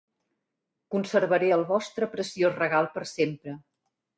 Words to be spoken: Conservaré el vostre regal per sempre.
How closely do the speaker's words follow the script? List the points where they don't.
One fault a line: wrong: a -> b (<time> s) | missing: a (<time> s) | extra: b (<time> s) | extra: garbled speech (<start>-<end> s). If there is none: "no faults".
extra: preciós (2.1 s)